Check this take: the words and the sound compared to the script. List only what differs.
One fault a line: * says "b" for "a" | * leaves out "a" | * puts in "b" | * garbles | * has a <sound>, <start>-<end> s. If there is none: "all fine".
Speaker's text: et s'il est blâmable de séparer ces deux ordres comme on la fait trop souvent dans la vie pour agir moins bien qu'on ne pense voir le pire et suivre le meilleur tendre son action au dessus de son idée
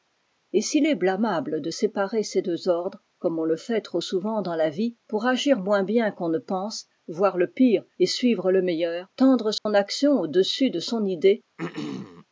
* says "le" for "la"
* has a dropout, 9.6-9.7 s
* has a throat clearing, 11.6-12.3 s